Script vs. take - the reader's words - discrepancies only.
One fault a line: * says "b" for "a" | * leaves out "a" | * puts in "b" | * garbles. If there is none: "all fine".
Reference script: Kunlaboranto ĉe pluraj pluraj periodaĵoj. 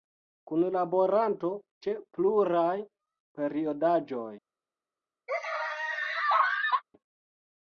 * leaves out "pluraj"